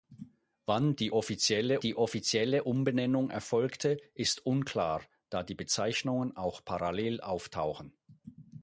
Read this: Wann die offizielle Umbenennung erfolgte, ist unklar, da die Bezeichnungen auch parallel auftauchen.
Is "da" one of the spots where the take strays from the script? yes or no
no